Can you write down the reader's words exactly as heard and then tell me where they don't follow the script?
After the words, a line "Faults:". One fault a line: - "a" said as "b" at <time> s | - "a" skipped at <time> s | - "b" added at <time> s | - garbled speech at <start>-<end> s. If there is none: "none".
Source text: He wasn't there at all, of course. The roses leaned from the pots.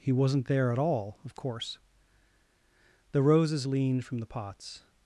He wasn't there at all, of course. The roses leaned from the pots.
Faults:
none